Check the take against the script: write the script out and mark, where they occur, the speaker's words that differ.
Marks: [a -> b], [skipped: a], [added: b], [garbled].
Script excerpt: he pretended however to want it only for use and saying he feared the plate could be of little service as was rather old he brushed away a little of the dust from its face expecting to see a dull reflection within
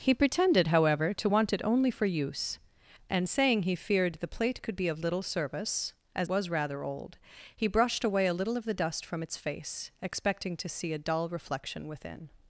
he pretended however to want it only for use and saying he feared the plate could be of little service as was rather old he brushed away a little of the dust from its face expecting to see a dull reflection within